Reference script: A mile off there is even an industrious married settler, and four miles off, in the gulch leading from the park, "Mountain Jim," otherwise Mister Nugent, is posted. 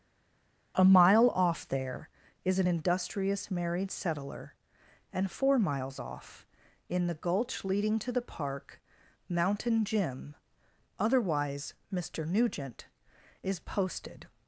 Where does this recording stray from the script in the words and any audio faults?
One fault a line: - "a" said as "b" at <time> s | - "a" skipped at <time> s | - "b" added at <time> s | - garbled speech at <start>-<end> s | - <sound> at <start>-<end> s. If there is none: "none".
- "even" skipped at 2.6 s
- "from" said as "to" at 8.0 s